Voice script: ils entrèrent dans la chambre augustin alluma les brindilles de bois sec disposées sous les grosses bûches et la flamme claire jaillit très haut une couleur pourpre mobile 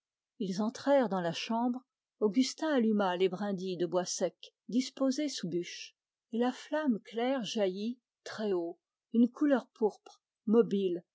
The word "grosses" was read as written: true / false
false